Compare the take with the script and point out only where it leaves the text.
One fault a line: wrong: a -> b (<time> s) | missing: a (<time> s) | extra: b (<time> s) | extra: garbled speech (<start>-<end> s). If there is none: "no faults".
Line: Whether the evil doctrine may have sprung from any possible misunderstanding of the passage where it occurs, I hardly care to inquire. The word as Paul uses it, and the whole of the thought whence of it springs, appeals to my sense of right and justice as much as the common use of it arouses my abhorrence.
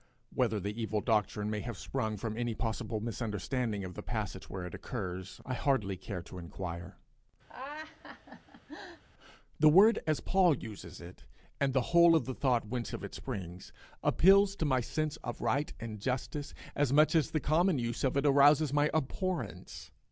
no faults